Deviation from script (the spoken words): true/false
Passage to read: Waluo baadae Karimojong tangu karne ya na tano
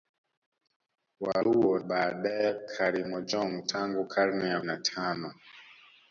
false